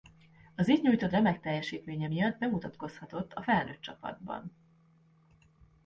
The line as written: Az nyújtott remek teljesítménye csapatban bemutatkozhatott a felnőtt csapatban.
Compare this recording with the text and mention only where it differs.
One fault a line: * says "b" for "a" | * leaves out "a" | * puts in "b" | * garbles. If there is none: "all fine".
* puts in "itt"
* says "miatt" for "csapatban"